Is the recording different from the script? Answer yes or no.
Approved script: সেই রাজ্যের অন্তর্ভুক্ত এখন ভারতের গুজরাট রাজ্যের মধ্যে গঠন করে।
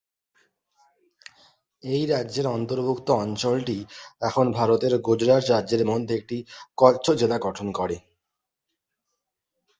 yes